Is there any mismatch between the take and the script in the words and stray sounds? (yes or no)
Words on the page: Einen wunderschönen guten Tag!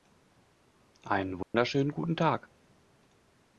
yes